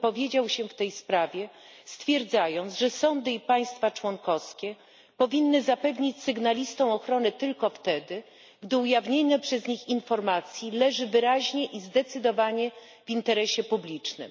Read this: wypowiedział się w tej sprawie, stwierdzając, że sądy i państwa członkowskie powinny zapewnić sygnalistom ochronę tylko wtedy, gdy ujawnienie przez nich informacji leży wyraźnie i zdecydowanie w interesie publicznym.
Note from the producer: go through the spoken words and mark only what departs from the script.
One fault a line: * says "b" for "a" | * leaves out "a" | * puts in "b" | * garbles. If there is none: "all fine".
all fine